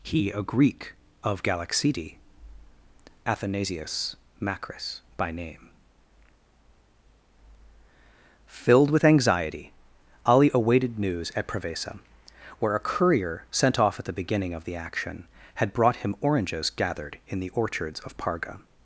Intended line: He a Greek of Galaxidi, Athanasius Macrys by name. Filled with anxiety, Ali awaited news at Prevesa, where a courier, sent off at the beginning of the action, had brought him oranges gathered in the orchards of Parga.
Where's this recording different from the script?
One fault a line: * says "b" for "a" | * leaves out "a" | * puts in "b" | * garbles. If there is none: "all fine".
all fine